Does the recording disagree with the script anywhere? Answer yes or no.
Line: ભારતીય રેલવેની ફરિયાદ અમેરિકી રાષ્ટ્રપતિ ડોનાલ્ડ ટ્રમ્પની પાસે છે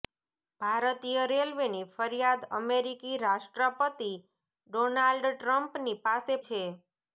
no